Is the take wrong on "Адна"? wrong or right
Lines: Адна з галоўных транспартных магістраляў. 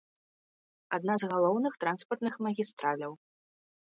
right